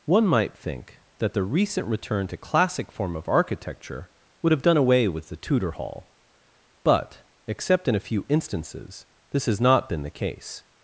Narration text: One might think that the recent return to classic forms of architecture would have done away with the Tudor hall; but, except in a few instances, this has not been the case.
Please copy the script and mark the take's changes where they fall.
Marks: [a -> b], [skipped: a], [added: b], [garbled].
One might think that the recent return to classic [forms -> form] of architecture would have done away with the Tudor hall; but, except in a few instances, this has not been the case.